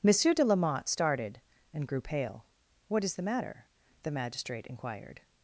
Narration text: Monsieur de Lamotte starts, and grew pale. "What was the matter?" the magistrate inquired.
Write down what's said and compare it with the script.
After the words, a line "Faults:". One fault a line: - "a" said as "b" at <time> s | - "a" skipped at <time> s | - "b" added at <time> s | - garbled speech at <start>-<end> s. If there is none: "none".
Monsieur de Lamotte started, and grew pale. "What is the matter?" the magistrate inquired.
Faults:
- "starts" said as "started" at 0.9 s
- "was" said as "is" at 3.0 s